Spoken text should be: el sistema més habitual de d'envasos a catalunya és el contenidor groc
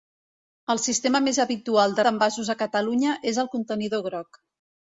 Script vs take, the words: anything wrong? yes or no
no